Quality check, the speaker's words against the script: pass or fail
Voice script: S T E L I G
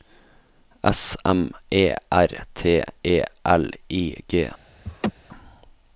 fail